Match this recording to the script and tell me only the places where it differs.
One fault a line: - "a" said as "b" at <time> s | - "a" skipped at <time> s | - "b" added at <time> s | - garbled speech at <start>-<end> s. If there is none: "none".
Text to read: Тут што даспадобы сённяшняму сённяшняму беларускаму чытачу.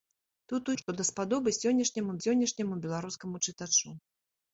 none